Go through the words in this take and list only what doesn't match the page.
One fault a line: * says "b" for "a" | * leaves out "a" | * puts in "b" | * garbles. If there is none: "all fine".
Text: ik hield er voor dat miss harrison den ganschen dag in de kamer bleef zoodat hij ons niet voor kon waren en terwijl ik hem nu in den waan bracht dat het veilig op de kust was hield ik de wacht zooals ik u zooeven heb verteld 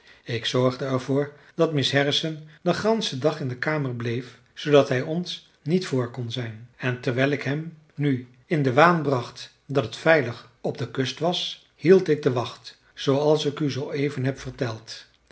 * says "zorgde" for "hield"
* says "zijn" for "waren"